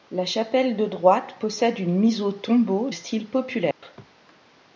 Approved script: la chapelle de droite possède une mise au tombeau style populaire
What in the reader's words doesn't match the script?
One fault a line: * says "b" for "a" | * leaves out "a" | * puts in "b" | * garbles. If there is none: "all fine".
all fine